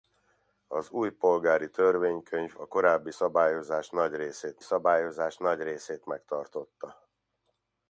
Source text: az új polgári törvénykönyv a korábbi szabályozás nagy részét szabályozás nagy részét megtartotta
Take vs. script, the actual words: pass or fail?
pass